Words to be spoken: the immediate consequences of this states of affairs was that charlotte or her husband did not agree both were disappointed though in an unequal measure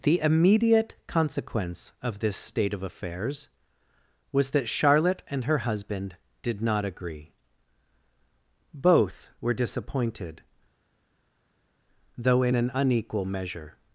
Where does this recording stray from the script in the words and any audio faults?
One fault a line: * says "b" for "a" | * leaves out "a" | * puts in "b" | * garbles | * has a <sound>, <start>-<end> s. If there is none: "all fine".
* says "consequence" for "consequences"
* says "state" for "states"
* says "and" for "or"